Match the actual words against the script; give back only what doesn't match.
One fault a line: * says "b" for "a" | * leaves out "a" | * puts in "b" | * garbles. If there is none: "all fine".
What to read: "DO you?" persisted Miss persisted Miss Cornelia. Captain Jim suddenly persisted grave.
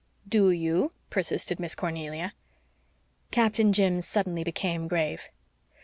* leaves out "persisted Miss"
* says "became" for "persisted"